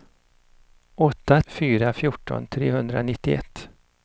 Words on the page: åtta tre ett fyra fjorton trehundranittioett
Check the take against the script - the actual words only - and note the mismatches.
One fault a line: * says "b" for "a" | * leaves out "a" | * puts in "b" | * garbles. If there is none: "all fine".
* leaves out "tre ett"